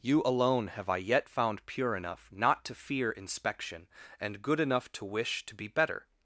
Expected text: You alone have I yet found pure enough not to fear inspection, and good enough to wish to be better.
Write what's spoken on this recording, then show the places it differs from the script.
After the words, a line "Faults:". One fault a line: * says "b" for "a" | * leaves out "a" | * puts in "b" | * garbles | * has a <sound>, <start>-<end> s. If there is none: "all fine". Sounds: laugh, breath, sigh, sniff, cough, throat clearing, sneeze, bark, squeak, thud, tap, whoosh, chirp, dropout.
You alone have I yet found pure enough not to fear inspection, and good enough to wish to be better.
Faults:
all fine